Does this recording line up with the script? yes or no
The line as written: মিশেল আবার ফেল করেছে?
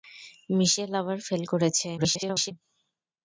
no